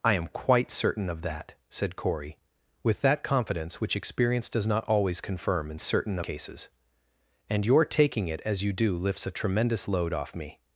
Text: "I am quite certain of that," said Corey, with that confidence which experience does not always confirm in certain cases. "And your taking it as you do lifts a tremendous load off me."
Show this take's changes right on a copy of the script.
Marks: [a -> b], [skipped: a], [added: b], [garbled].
"I am quite certain of that," said Corey, with that confidence which experience does not always confirm in certain cases. "And your taking it as you do lifts a tremendous load off me."